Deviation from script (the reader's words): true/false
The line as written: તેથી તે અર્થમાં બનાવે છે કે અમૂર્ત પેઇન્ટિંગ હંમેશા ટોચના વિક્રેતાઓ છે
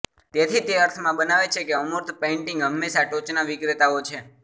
false